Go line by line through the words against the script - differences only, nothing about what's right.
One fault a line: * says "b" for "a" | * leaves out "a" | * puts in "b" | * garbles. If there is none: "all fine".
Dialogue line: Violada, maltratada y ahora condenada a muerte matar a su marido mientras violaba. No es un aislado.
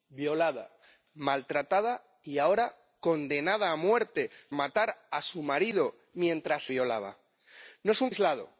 all fine